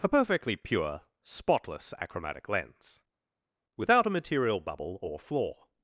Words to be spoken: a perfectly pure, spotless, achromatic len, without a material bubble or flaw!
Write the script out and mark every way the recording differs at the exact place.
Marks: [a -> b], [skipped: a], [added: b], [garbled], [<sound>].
a perfectly pure, spotless, achromatic [len, -> lens] without a material bubble or flaw!